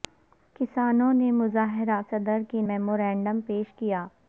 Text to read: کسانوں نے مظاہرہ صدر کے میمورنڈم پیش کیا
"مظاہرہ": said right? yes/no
yes